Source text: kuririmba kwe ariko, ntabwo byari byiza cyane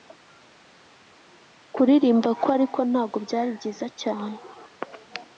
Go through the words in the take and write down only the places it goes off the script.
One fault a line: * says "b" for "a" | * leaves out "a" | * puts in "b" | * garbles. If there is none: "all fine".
all fine